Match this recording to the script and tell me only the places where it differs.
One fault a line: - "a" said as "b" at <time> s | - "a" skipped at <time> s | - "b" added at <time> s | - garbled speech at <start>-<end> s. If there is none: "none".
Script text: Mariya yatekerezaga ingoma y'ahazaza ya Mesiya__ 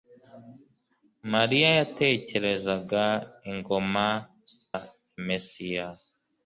- "y'ahazaza" skipped at 4.1 s